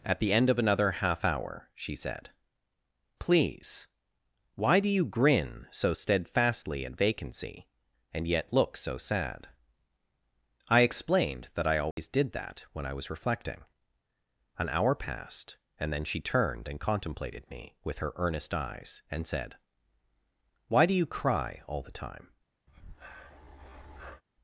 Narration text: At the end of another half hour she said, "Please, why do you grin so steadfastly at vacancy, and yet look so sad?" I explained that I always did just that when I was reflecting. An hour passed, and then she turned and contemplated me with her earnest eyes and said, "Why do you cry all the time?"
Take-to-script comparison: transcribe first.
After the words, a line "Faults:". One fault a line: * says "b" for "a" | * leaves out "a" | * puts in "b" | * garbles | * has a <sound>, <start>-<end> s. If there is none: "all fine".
At the end of another half hour she said, "Please, why do you grin so steadfastly at vacancy, and yet look so sad?" I explained that I always did that when I was reflecting. An hour passed, and then she turned and contemplated me with her earnest eyes and said, "Why do you cry all the time?"
Faults:
* has a dropout, 11.9-12.0 s
* leaves out "just"
* has a breath, 22.7-24.2 s